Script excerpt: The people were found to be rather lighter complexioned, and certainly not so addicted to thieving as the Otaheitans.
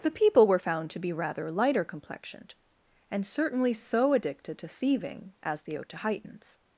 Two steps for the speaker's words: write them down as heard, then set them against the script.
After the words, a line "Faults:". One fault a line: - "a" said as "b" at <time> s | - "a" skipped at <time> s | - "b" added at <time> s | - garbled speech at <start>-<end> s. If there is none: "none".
The people were found to be rather lighter complexioned, and certainly so addicted to thieving as the Otaheitans.
Faults:
- "not" skipped at 3.7 s